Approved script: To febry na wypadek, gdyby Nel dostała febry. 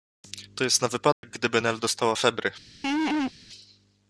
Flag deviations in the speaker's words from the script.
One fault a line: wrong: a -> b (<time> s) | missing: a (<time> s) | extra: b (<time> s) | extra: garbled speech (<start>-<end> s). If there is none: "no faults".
wrong: febry -> jest (0.6 s)